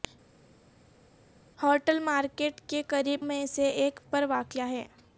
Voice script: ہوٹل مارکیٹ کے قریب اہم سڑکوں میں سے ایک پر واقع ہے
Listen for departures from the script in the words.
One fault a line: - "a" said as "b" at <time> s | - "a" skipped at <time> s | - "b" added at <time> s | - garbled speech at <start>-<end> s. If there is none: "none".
- "اہم سڑکوں" skipped at 3.2 s